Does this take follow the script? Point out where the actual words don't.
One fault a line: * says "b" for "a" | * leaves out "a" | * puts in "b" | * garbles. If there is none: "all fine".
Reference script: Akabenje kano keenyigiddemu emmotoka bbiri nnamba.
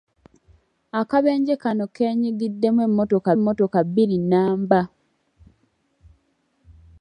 * puts in "emmotoka"